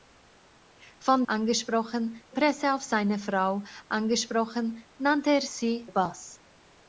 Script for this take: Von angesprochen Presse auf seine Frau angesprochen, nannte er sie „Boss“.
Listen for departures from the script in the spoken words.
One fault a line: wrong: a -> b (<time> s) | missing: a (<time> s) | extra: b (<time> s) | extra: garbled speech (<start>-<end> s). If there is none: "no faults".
no faults